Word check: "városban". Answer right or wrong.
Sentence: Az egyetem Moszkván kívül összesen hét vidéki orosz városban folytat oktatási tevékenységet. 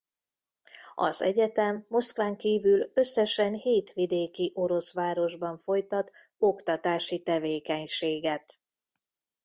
right